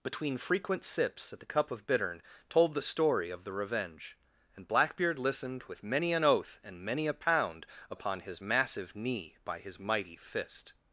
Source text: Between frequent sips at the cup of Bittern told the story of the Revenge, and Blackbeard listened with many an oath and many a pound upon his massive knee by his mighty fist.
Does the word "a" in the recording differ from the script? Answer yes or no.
no